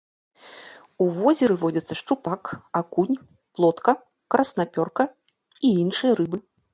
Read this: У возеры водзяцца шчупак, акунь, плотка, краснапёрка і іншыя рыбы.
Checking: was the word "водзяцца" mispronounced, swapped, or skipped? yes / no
no